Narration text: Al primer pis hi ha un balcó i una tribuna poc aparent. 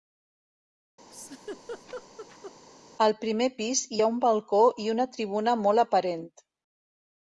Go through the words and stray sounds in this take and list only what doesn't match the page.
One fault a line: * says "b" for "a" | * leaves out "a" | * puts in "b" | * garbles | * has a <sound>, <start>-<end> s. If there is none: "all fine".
* has a laugh, 1.1-2.5 s
* says "molt" for "poc"